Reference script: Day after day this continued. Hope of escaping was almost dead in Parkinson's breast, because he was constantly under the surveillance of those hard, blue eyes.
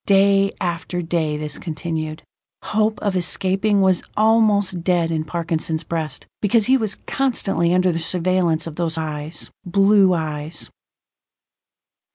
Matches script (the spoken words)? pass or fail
fail